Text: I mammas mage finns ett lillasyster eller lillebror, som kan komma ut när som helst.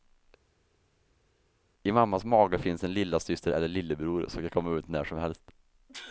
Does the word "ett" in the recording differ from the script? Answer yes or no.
yes